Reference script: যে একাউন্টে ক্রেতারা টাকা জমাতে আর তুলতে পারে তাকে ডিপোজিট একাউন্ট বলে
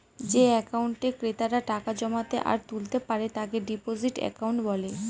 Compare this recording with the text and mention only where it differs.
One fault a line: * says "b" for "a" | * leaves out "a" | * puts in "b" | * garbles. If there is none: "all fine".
all fine